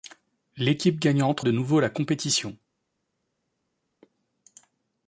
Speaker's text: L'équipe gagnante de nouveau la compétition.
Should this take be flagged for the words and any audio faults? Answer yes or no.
no